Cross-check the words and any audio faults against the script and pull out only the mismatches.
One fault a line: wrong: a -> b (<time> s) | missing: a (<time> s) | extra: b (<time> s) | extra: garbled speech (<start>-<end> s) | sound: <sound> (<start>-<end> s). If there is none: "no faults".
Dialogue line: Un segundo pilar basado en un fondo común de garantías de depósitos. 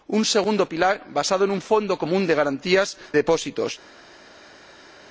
missing: de (3.0 s)